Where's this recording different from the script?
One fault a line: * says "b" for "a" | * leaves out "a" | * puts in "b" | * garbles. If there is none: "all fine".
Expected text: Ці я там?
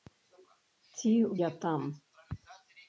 all fine